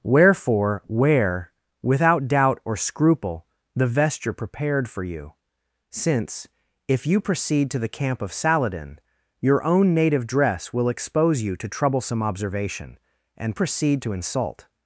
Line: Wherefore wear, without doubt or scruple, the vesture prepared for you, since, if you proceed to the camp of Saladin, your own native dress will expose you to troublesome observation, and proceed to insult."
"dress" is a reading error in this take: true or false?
false